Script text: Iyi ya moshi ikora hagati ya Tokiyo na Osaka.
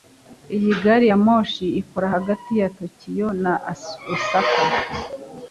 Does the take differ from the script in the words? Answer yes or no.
yes